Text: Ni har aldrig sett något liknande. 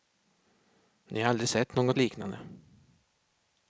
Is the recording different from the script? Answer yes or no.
no